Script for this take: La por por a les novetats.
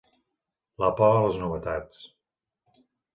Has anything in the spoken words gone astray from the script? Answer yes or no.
yes